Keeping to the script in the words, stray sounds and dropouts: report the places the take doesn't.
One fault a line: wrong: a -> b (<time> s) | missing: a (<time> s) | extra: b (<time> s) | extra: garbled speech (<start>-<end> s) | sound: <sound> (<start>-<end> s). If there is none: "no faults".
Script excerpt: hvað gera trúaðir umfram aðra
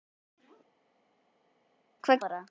missing: gera trúaðir umfram (2.2 s)